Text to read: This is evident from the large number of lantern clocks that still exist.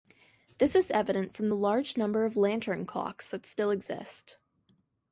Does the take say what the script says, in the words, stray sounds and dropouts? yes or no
yes